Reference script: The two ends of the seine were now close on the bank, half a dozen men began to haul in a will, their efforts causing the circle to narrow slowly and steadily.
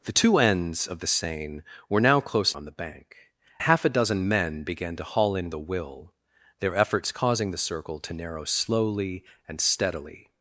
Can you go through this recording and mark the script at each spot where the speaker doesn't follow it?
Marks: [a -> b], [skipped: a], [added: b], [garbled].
The two ends of the seine were now close on the bank, half a dozen men began to haul in a will, their efforts causing the circle to narrow slowly and steadily.